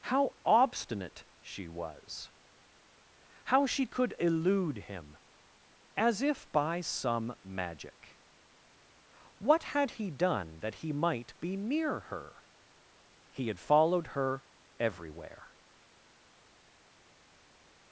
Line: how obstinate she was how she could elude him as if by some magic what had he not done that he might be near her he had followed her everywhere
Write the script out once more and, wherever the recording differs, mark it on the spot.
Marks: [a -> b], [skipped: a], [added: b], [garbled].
how obstinate she was how she could elude him as if by some magic what had he [skipped: not] done that he might be near her he had followed her everywhere